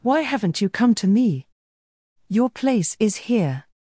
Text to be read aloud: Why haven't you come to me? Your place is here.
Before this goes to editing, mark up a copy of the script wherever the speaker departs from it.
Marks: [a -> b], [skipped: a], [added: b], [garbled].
Why haven't you come to me? Your place is here.